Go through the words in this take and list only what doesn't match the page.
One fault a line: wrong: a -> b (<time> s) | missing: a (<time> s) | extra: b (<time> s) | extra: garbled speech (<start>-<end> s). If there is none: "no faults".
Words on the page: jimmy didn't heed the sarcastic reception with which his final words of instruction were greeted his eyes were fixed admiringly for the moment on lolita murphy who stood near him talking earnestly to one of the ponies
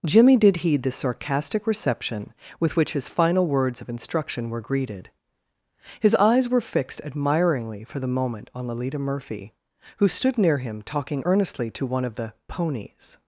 wrong: didn't -> did (0.3 s)